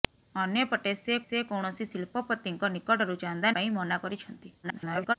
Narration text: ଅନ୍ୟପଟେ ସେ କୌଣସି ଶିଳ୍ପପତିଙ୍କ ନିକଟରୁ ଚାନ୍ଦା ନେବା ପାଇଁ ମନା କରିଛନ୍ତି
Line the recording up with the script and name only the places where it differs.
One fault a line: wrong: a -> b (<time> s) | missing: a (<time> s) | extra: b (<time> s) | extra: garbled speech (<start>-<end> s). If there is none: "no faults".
extra: ସେ (1.2 s)
missing: ନେବା (3.5 s)
extra: garbled speech (4.6-5.1 s)